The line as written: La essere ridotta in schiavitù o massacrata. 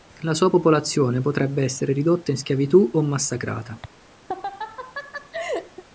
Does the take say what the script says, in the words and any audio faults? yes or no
no